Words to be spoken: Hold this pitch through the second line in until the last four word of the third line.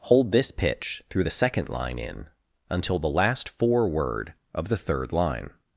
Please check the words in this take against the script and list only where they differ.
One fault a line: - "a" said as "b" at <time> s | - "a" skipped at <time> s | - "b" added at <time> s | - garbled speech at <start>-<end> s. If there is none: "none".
none